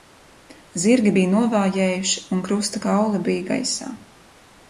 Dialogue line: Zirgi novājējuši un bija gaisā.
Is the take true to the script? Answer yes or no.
no